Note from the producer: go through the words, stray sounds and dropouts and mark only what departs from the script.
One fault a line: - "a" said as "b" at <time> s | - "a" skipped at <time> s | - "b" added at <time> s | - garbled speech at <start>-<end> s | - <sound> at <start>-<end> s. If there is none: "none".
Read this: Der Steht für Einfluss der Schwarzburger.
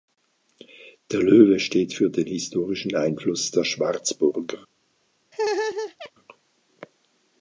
- "Löwe" added at 1.2 s
- "den historischen" added at 2.1 s
- laugh at 5.3-6.1 s